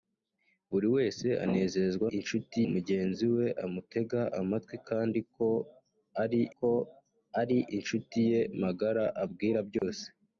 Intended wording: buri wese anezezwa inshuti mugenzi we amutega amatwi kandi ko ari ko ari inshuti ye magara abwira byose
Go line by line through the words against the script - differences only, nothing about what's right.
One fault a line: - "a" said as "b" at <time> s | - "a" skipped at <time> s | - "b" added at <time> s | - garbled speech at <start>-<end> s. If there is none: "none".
none